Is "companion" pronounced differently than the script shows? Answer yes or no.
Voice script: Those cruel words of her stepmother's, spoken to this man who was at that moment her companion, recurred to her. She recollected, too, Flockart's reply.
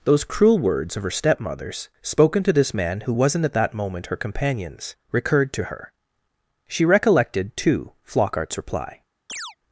yes